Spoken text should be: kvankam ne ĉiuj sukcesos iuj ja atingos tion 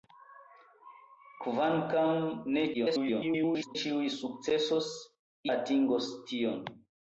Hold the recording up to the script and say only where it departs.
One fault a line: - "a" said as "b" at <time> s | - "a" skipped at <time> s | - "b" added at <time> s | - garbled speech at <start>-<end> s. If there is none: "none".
- garbled speech at 2.7-3.8 s
- "iuj ja" skipped at 4.9 s